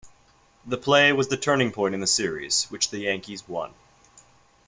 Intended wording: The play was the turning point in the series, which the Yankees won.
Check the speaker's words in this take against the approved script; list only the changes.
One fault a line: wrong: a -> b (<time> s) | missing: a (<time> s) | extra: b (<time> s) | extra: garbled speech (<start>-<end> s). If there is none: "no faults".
no faults